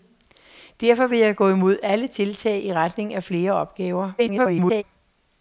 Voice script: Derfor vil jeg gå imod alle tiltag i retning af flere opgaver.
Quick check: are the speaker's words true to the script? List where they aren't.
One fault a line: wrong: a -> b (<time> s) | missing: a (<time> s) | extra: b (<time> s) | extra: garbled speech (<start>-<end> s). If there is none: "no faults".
extra: garbled speech (4.2-4.8 s)